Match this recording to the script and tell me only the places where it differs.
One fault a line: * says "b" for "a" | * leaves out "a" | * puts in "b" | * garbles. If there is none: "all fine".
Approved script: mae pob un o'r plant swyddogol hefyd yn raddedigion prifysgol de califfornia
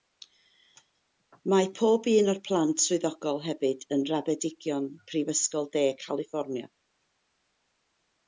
all fine